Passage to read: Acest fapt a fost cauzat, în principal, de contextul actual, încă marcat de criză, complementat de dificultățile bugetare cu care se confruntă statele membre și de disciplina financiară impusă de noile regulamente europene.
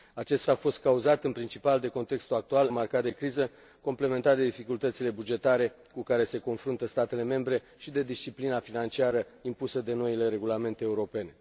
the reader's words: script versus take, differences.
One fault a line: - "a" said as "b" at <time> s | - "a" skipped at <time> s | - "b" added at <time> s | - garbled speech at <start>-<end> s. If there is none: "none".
- "fapt" skipped at 0.5 s
- "încă" skipped at 2.7 s